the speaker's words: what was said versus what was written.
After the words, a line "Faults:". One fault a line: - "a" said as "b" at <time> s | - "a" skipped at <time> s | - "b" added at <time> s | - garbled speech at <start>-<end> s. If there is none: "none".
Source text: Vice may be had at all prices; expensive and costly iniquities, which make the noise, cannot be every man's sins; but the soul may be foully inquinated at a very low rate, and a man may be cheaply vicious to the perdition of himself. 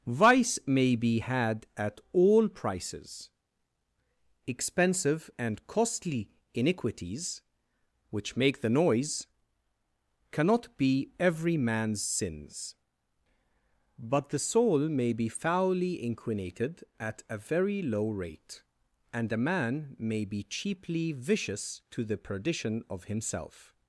Vice may be had at all prices; expensive and costly iniquities, which make the noise, cannot be every man's sins; but the soul may be foully inquinated at a very low rate, and a man may be cheaply vicious to the perdition of himself.
Faults:
none